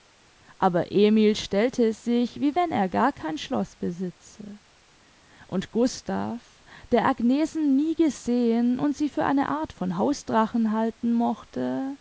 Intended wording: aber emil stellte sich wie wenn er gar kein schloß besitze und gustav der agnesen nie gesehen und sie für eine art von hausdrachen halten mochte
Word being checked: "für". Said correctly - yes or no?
yes